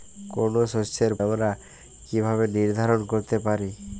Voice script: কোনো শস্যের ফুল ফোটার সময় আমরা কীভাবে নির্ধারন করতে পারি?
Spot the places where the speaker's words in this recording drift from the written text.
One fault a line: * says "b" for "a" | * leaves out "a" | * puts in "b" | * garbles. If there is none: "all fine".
* leaves out "ফুল ফোটার সময়"